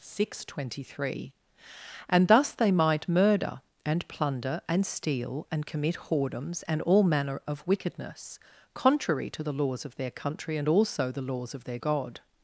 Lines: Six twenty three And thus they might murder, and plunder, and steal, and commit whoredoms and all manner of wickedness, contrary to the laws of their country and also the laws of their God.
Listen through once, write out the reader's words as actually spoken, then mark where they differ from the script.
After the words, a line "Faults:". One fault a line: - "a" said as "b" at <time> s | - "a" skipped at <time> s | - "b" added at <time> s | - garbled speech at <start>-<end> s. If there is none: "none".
Six twenty three And thus they might murder, and plunder, and steal, and commit whoredoms and all manner of wickedness, contrary to the laws of their country and also the laws of their God.
Faults:
none